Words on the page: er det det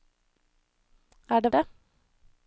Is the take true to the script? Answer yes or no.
yes